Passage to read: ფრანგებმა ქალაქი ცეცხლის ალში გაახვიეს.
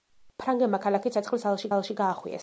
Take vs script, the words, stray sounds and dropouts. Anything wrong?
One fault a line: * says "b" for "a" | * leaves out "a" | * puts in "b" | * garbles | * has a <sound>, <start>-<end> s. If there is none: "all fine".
* puts in "ალში"